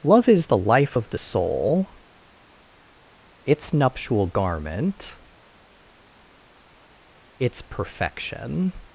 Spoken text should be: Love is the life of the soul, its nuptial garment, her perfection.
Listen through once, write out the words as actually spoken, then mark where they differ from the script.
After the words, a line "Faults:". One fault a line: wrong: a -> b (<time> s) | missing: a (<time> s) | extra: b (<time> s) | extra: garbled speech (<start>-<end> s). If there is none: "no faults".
Love is the life of the soul, its nuptial garment, its perfection.
Faults:
wrong: her -> its (7.4 s)